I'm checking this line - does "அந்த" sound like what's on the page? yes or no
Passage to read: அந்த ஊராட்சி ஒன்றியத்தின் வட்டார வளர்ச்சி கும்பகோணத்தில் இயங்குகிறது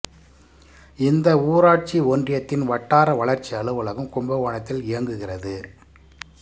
no